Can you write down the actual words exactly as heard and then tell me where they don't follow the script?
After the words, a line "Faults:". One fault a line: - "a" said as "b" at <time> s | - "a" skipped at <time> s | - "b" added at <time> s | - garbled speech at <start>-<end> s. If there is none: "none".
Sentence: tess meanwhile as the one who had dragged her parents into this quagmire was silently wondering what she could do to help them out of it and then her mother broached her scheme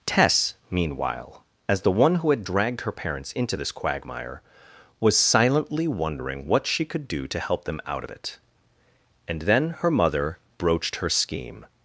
tess meanwhile as the one who had dragged her parents into this quagmire was silently wondering what she could do to help them out of it and then her mother broached her scheme
Faults:
none